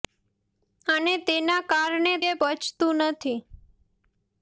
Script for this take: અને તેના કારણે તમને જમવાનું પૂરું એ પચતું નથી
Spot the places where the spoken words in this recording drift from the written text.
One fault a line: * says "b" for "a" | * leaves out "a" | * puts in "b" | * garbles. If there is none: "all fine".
* leaves out "તમને જમવાનું પૂરું"